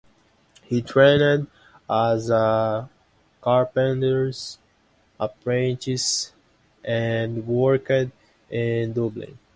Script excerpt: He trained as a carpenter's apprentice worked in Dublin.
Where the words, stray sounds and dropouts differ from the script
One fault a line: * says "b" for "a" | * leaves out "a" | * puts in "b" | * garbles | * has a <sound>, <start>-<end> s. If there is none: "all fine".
* puts in "and"